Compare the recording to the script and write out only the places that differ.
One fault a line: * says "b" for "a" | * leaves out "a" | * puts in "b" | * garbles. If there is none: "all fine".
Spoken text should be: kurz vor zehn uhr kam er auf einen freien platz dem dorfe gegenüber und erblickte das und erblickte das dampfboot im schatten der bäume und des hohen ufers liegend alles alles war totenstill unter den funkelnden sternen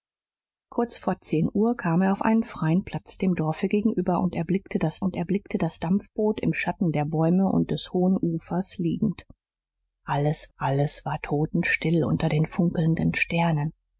all fine